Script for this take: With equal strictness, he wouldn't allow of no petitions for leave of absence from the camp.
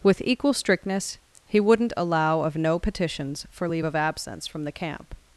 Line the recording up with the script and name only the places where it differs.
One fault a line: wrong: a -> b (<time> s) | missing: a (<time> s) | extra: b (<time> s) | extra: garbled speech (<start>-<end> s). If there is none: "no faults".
no faults